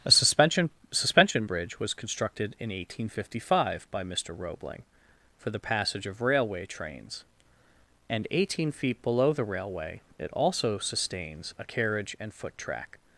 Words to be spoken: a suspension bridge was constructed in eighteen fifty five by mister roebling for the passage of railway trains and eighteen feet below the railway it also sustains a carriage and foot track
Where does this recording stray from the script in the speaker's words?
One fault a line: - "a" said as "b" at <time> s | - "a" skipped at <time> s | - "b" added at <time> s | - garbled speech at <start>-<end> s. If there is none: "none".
- "suspension" added at 0.9 s